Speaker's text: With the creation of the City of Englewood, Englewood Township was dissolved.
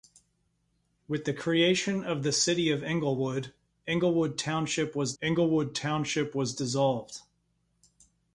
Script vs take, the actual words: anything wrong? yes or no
yes